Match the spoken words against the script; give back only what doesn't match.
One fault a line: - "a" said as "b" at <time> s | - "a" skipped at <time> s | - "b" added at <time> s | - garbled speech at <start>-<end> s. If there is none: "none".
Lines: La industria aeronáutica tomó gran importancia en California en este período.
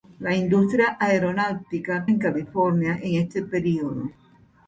- "tomó gran importancia" skipped at 2.1 s